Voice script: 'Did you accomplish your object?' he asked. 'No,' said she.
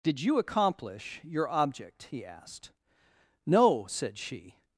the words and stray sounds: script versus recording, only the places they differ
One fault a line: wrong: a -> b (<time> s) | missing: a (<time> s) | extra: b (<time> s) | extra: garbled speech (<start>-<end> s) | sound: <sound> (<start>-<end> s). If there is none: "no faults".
no faults